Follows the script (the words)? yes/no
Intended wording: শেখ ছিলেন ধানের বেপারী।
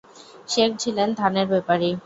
yes